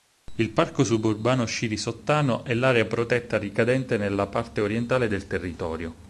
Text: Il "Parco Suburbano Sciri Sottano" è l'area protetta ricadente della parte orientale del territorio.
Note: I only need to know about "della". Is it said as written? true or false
false